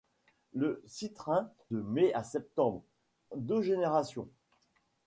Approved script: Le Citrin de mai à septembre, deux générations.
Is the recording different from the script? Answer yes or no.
no